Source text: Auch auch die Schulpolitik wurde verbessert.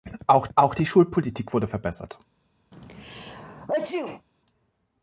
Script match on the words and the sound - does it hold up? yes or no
no